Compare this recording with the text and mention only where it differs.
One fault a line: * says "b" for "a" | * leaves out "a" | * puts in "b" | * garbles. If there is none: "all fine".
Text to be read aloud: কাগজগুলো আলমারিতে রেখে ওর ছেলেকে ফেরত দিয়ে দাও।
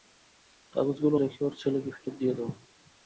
* leaves out "আলমারিতে"